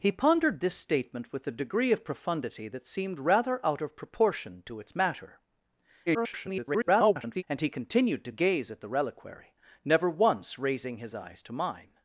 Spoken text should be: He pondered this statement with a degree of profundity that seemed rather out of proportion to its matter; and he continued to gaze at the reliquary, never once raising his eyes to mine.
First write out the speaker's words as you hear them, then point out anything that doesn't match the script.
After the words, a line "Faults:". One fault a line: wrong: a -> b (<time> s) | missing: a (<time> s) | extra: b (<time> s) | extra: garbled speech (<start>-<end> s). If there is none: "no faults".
He pondered this statement with a degree of profundity that seemed rather out of proportion to its matter; [garbled] and he continued to gaze at the reliquary, never once raising his eyes to mine.
Faults:
extra: garbled speech (6.1-7.4 s)